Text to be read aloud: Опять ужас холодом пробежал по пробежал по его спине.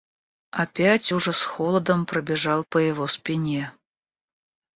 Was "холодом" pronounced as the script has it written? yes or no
yes